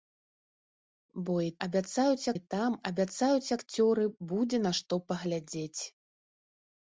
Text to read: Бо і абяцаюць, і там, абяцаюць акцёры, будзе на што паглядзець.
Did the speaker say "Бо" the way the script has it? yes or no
yes